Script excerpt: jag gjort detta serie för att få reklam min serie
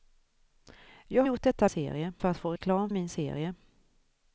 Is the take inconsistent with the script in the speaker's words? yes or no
no